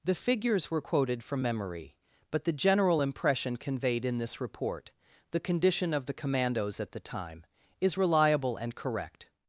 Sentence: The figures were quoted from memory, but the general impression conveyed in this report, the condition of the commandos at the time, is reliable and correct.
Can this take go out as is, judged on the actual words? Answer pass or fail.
pass